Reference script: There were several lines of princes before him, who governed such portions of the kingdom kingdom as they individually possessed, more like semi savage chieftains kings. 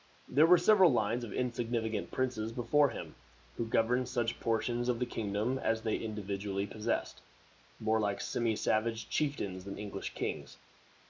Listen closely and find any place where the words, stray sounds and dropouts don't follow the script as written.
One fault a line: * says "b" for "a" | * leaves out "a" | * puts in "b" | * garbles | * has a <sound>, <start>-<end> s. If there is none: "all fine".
* puts in "insignificant"
* leaves out "kingdom"
* puts in "than English"